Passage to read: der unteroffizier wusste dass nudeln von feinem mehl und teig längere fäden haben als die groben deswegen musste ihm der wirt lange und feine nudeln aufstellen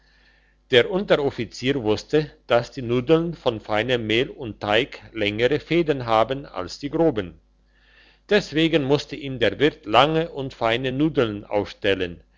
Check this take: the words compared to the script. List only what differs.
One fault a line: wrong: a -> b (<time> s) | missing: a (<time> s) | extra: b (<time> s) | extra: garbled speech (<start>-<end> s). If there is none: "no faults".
extra: die (2.7 s)